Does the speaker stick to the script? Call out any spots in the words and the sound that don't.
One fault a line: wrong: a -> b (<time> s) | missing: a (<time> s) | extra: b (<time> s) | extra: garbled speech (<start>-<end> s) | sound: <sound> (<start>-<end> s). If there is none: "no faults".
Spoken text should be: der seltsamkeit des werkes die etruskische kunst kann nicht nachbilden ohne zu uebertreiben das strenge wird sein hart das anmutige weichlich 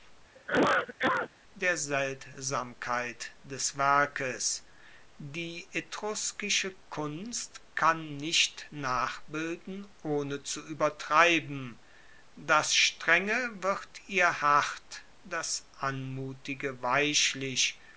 sound: cough (0.4-1.3 s)
wrong: sein -> ihr (14.1 s)